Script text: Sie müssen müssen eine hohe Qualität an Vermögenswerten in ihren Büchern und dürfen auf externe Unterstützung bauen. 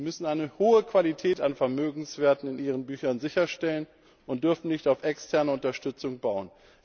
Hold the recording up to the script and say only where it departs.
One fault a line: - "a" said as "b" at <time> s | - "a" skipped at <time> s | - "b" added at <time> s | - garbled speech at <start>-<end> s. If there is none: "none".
- "müssen" skipped at 0.3 s
- "sicherstellen" added at 3.2 s
- "nicht" added at 4.7 s